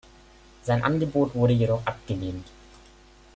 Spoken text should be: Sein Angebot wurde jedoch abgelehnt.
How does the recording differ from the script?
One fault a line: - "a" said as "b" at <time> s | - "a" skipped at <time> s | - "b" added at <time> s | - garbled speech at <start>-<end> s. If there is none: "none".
none